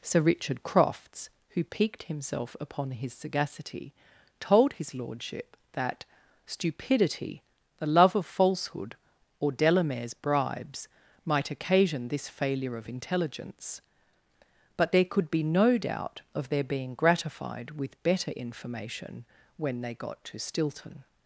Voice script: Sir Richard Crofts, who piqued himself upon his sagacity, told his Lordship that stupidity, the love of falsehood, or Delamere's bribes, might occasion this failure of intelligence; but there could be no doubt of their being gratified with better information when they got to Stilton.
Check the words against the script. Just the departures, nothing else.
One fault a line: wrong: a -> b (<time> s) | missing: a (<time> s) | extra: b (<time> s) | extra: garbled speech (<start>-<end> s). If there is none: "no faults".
no faults